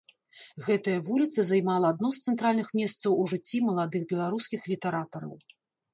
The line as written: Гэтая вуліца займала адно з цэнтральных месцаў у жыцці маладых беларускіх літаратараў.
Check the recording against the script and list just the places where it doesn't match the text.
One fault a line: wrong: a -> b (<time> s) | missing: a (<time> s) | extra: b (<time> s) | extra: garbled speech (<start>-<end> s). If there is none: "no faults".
no faults